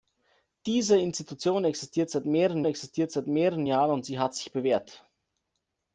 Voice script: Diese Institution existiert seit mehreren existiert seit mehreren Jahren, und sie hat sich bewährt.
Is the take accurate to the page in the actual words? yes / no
yes